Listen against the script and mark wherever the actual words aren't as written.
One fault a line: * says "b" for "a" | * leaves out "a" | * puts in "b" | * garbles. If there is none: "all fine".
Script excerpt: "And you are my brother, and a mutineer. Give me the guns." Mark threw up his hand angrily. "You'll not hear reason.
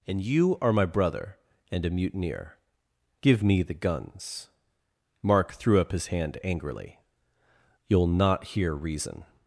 all fine